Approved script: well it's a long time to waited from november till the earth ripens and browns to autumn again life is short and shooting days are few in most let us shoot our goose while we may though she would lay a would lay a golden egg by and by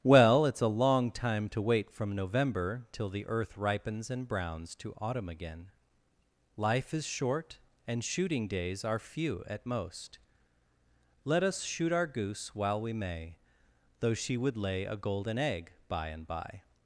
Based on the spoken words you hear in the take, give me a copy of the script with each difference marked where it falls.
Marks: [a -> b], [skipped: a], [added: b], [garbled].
well it's a long time to [waited -> wait] from november till the earth ripens and browns to autumn again life is short and shooting days are few [in -> at] most let us shoot our goose while we may though she would lay a [skipped: would lay a] golden egg by and by